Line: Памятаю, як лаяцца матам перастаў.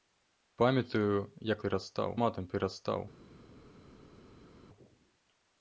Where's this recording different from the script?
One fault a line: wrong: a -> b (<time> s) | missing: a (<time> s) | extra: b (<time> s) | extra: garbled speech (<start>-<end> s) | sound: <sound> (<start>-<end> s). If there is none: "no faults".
wrong: лаяцца -> перастаў (1.7 s)